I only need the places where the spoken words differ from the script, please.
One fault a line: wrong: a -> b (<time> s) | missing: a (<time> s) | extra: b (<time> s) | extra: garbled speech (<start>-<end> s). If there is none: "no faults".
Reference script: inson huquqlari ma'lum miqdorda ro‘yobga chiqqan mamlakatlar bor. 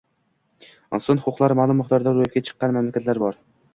no faults